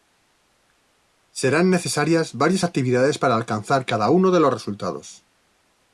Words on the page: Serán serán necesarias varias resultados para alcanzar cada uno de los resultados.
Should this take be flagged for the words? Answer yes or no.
yes